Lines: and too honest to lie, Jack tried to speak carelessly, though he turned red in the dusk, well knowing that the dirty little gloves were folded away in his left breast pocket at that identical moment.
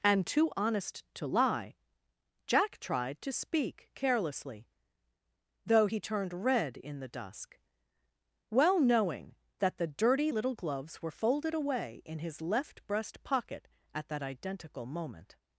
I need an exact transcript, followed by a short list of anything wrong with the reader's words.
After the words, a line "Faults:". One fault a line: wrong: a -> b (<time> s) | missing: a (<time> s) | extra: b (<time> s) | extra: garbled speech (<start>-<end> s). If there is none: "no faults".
and too honest to lie, Jack tried to speak carelessly, though he turned red in the dusk, well knowing that the dirty little gloves were folded away in his left breast pocket at that identical moment.
Faults:
no faults